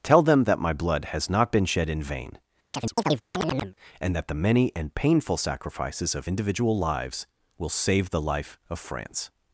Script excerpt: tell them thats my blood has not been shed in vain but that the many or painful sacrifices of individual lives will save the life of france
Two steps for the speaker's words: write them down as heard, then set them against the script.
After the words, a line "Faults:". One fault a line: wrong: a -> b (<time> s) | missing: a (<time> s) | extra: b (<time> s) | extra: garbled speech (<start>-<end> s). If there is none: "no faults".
tell them that my blood has not been shed in vain and that the many and painful sacrifices of individual lives will save the life of france
Faults:
wrong: thats -> that (0.5 s)
wrong: but -> and (4.0 s)
wrong: or -> and (4.8 s)